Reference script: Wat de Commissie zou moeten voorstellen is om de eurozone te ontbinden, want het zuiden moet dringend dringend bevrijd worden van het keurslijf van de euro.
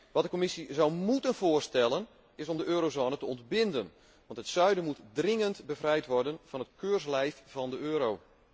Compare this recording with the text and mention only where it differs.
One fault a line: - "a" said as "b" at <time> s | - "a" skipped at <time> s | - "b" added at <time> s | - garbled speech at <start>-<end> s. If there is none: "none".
- "dringend" skipped at 5.7 s